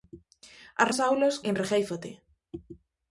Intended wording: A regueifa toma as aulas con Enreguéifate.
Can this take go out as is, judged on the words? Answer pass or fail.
fail